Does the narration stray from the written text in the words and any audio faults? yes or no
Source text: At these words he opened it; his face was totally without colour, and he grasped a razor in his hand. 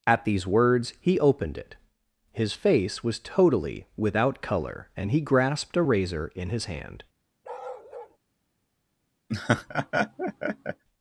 yes